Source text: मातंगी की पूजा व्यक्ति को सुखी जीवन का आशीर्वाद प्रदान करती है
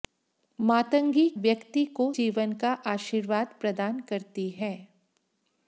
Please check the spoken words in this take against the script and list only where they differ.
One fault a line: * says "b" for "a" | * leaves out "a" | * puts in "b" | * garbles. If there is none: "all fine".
* leaves out "की पूजा"
* leaves out "सुखी"